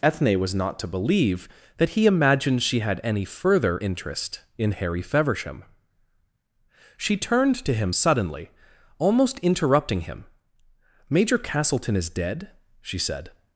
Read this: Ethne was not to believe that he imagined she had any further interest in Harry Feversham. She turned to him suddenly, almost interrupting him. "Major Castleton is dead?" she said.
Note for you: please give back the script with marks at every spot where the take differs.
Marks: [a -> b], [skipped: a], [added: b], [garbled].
Ethne was not to believe that he imagined she had any further interest in Harry Feversham. She turned to him suddenly, almost interrupting him. "Major Castleton is dead?" she said.